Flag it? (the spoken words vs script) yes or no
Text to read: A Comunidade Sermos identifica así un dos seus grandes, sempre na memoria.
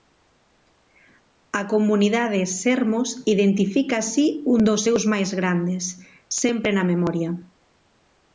yes